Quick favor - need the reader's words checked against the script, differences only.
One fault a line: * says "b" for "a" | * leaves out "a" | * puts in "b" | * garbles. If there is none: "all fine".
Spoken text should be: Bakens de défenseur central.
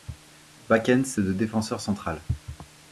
all fine